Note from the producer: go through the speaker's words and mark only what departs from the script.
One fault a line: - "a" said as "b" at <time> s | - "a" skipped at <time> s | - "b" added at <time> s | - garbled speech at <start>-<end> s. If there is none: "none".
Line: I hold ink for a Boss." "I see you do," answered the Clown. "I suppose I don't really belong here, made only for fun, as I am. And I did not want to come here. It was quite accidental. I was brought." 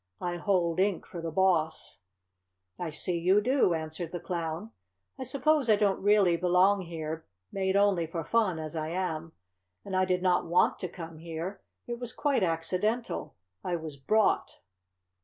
- "a" said as "the" at 1.2 s